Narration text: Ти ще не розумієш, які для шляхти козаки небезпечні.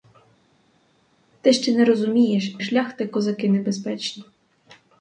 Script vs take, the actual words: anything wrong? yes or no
yes